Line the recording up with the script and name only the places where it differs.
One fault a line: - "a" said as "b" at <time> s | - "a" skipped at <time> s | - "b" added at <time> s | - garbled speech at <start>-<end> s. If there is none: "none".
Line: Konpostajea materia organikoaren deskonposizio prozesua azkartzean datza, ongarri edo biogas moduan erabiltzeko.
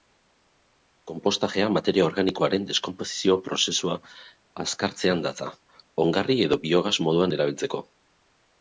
none